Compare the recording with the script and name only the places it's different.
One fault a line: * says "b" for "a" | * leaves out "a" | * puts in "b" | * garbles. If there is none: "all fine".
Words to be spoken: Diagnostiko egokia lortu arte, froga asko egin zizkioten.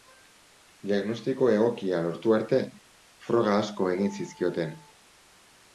all fine